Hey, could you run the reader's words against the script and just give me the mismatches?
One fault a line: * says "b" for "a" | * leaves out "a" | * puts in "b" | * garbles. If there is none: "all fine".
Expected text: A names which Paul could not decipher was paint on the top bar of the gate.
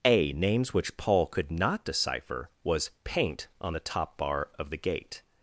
all fine